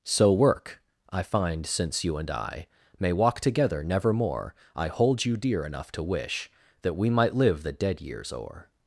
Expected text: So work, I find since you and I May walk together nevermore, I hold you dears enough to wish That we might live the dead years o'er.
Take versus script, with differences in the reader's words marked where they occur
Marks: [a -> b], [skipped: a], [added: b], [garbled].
So work, I find since you and I May walk together nevermore, I hold you [dears -> dear] enough to wish That we might live the dead years o'er.